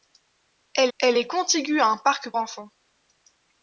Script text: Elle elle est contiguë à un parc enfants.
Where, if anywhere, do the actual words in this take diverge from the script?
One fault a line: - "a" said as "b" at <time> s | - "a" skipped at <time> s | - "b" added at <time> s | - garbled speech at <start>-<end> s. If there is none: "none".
none